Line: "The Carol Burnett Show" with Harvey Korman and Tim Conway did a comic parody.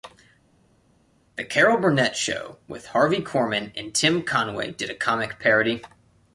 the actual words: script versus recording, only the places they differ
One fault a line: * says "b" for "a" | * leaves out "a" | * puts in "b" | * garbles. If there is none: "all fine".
all fine